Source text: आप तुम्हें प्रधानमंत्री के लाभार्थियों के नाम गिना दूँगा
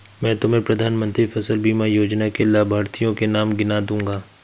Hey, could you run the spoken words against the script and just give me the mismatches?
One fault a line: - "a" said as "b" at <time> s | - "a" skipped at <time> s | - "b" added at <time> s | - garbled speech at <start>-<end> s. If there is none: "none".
- "आप" said as "मैं" at 0.2 s
- "फसल बीमा योजना" added at 1.2 s